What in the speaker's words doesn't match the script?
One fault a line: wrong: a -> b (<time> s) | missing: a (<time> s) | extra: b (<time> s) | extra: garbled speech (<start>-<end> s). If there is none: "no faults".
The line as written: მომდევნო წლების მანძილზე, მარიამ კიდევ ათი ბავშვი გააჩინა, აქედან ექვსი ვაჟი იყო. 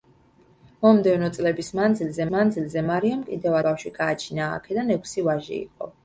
extra: მანძილზე (2.4 s)
missing: ათი (3.6 s)